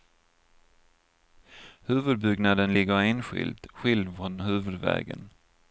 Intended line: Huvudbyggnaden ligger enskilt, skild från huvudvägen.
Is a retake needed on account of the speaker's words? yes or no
no